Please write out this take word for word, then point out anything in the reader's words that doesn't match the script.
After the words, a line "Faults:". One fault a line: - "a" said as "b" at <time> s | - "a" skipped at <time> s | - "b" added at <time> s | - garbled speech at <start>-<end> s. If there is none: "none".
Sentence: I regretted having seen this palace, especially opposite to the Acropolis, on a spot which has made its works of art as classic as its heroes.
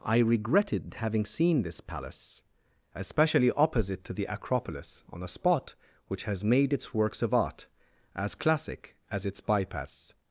I regretted having seen this palace, especially opposite to the Acropolis, on a spot which has made its works of art as classic as its bypass.
Faults:
- "heroes" said as "bypass" at 9.4 s